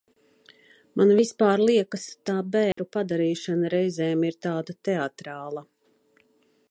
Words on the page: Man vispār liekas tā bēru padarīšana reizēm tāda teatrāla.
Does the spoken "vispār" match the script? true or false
true